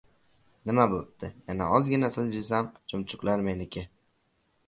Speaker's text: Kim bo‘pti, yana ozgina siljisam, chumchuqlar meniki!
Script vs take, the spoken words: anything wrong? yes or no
yes